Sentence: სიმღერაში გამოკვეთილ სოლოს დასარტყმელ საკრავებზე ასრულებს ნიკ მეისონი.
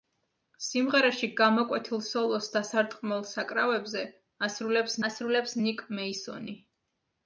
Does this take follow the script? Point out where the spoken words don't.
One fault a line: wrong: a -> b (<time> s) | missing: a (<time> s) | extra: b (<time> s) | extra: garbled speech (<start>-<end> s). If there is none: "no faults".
extra: ასრულებს (5.1 s)